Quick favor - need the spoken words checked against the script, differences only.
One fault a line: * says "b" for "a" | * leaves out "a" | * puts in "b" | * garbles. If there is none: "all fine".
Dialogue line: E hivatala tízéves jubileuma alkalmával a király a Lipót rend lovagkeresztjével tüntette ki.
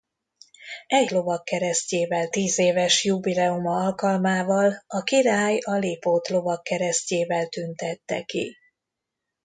* says "lovagkeresztjével" for "hivatala"
* leaves out "rend"